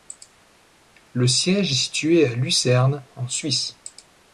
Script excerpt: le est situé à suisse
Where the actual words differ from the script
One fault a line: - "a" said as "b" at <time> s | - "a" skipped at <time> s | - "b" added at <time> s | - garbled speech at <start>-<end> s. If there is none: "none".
- "siège" added at 1.3 s
- "lucerne en" added at 2.3 s